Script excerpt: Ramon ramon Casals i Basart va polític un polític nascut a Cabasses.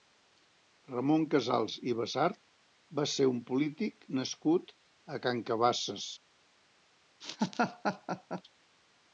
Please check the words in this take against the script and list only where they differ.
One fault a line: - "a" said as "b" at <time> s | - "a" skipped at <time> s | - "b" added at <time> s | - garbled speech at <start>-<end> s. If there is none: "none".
- "ramon" skipped at 1.2 s
- "polític" said as "ser" at 3.1 s
- "Can" added at 5.3 s